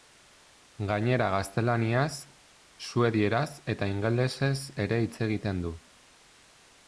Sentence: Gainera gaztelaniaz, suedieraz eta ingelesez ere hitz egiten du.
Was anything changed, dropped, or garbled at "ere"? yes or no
no